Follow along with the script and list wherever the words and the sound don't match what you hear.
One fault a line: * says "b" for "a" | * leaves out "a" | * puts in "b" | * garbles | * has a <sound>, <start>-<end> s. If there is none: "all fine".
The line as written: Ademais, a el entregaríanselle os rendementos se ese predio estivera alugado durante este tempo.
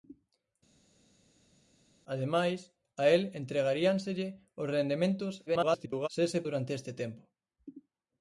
* garbles
* leaves out "predio estivera alugado"